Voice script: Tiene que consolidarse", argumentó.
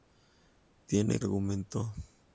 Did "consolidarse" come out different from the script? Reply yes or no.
yes